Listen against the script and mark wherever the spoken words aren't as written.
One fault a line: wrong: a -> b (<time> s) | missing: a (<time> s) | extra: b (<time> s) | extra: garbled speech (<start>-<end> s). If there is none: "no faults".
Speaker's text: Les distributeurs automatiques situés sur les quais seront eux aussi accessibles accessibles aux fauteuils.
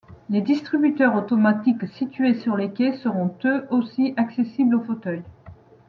missing: accessibles (4.8 s)